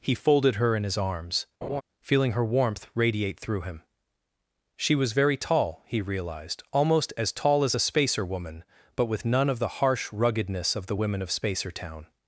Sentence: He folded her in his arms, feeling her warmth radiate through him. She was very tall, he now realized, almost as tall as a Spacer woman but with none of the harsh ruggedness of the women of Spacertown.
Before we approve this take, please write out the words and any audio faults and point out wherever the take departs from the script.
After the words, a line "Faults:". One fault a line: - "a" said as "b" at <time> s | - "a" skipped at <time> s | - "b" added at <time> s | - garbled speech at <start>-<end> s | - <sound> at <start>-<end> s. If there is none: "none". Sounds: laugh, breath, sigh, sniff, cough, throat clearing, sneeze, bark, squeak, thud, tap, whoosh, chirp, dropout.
He folded her in his arms, feeling her warmth radiate through him. She was very tall, he realized, almost as tall as a Spacer woman but with none of the harsh ruggedness of the women of Spacertown.
Faults:
- laugh at 1.6-1.8 s
- "now" skipped at 6.0 s